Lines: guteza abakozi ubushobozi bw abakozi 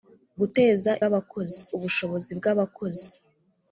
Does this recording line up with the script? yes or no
yes